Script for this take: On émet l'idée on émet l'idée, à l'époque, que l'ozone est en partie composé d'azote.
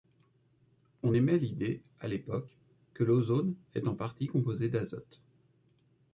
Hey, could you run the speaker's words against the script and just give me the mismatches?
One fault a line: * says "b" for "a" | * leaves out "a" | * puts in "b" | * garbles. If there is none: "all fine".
* leaves out "on émet l'idée"